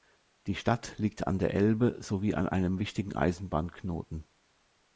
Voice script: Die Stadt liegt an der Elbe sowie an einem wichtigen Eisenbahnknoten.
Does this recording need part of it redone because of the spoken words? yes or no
no